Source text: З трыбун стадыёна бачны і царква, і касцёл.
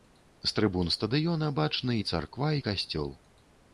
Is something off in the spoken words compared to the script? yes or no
no